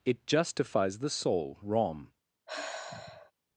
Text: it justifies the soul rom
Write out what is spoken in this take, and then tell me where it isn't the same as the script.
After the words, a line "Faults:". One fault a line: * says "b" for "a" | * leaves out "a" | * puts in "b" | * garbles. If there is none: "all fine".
it justifies the soul rom
Faults:
all fine